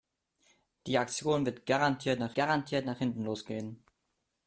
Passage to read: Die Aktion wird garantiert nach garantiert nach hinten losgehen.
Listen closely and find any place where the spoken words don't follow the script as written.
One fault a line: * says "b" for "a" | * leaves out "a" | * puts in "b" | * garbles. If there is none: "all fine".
all fine